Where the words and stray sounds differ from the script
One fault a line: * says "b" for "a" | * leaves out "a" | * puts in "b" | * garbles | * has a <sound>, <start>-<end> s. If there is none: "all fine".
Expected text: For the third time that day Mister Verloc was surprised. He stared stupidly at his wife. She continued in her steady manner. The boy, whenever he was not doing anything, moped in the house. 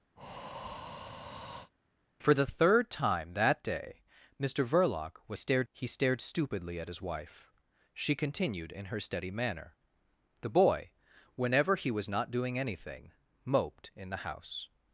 * has a breath, 0.2-1.7 s
* says "stared" for "surprised"